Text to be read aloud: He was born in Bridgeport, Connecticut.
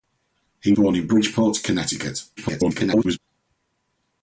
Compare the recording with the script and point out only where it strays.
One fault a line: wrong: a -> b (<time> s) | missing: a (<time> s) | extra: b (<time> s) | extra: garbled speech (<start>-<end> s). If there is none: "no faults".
missing: was (0.8 s)
extra: garbled speech (2.4-3.2 s)